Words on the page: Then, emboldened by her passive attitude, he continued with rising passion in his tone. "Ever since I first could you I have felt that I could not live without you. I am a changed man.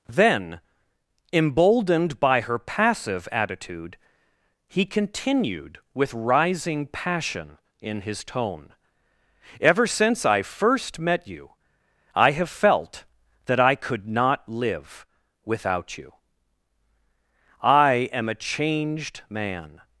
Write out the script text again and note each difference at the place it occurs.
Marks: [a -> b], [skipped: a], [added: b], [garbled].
Then, emboldened by her passive attitude, he continued with rising passion in his tone. "Ever since I first [could -> met] you I have felt that I could not live without you. I am a changed man.